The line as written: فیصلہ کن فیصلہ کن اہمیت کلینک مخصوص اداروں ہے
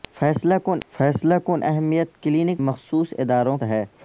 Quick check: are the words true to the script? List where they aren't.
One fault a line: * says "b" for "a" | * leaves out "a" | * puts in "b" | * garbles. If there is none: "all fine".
all fine